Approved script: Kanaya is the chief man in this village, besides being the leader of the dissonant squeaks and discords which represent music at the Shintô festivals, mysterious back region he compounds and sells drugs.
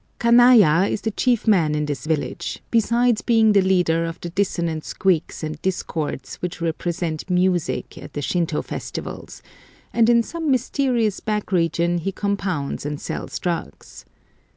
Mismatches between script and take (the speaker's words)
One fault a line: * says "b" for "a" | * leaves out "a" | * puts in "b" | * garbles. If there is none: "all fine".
* puts in "and in some"